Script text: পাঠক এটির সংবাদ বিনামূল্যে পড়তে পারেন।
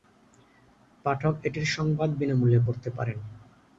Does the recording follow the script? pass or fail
pass